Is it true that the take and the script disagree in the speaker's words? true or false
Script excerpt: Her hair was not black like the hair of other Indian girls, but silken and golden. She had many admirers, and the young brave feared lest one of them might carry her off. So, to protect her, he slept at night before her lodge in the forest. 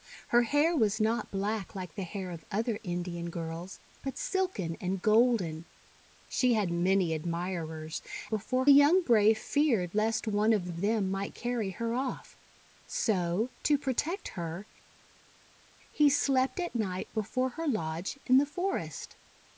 true